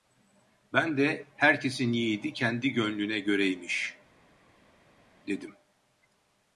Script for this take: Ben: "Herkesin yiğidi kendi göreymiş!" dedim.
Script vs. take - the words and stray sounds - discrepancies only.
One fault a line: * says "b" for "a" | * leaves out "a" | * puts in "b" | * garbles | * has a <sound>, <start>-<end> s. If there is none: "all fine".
* puts in "de"
* puts in "gönlüne"